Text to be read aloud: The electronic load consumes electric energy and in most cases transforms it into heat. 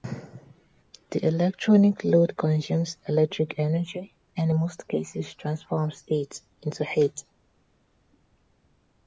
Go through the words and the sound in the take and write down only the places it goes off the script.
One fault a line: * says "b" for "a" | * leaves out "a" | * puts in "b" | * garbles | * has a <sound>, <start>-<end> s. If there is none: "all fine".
all fine